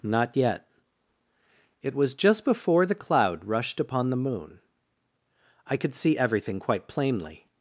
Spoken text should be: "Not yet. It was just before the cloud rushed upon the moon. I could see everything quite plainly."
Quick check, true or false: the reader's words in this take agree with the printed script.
true